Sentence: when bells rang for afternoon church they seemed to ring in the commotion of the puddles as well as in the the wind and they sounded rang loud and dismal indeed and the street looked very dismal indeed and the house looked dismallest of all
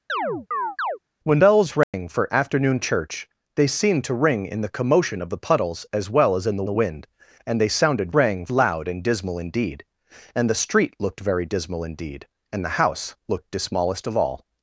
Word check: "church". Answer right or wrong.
right